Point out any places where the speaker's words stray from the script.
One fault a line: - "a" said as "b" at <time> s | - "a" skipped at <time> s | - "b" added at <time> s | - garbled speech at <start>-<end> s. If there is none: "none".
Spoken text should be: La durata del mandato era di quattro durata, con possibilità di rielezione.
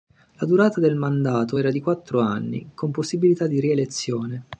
- "durata" said as "anni" at 2.2 s